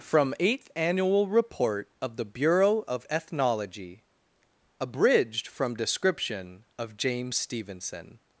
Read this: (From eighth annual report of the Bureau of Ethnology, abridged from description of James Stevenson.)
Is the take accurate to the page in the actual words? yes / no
yes